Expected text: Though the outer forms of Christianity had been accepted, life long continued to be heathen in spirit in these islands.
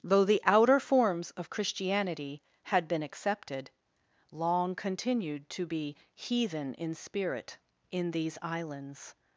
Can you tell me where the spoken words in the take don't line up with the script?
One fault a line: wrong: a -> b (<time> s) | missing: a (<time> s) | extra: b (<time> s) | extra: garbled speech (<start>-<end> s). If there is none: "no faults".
missing: life (3.7 s)